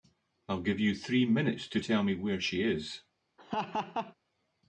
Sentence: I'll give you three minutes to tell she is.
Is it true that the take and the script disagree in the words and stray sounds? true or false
true